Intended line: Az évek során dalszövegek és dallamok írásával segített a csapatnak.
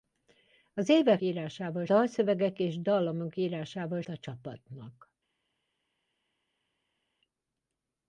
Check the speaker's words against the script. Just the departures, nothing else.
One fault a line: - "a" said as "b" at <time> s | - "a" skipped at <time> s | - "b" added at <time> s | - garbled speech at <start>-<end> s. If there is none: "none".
- "során" said as "írásával" at 1.2 s
- "segített" skipped at 4.0 s